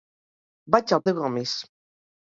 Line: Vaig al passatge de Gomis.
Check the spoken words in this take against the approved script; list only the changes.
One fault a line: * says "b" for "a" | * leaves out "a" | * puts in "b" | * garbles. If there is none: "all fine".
* leaves out "passatge"